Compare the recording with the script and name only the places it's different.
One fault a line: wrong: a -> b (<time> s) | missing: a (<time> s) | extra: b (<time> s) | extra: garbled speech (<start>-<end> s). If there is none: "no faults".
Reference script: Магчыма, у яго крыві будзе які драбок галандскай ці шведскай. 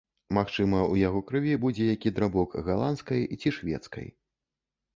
no faults